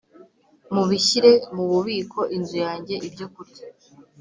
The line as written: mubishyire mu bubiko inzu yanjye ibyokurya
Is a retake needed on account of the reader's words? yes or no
no